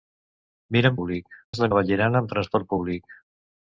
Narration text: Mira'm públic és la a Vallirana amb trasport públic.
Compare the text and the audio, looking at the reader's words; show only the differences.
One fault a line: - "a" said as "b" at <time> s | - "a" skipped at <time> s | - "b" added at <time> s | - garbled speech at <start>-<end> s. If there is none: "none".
none